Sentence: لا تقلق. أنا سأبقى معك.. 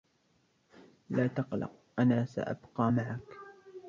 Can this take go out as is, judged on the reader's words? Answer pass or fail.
pass